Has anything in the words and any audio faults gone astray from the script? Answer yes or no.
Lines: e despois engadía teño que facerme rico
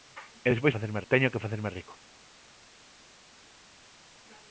yes